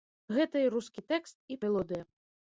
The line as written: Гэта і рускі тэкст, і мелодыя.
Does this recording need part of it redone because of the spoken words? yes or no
no